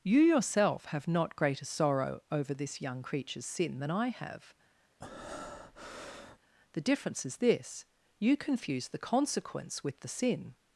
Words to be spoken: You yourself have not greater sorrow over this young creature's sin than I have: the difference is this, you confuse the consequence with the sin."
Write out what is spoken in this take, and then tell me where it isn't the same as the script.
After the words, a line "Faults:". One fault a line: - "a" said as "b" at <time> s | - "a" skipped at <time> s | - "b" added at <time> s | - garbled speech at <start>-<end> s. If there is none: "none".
You yourself have not greater sorrow over this young creature's sin than I have: the difference is this, you confuse the consequence with the sin."
Faults:
none